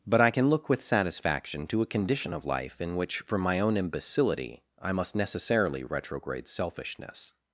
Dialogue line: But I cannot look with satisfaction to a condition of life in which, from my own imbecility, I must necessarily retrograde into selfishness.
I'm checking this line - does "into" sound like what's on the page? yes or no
no